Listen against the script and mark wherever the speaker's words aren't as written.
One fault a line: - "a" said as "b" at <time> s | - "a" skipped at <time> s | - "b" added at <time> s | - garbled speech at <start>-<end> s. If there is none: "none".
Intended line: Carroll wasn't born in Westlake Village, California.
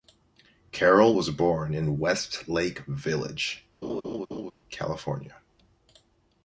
- "wasn't" said as "was" at 1.1 s